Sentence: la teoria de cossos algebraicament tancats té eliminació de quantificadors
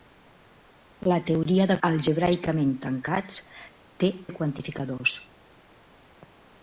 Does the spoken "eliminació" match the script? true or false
false